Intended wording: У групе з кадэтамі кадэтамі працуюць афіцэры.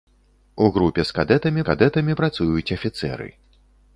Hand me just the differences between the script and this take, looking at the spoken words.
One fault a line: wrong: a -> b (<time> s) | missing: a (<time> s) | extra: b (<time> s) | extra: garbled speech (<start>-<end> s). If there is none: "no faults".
no faults